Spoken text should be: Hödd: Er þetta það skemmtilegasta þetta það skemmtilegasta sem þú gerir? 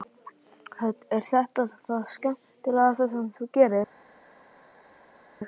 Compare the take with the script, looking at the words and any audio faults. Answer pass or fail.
fail